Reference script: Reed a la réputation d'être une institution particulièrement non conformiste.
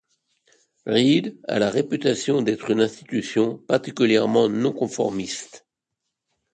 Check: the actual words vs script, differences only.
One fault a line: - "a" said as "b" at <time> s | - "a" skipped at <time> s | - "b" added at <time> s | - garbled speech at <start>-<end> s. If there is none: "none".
none